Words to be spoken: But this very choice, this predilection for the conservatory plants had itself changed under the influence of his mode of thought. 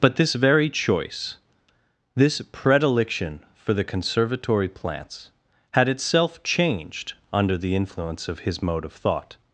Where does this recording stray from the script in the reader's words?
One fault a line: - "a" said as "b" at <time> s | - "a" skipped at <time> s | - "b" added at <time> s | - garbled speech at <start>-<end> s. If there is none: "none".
none